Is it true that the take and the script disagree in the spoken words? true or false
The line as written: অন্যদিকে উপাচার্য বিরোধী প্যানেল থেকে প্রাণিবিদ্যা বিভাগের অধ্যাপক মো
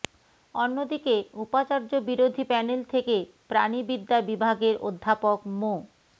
false